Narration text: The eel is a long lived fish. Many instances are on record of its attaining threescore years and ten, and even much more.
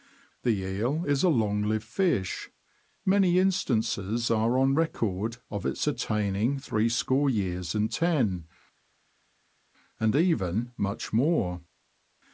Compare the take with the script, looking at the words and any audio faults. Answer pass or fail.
pass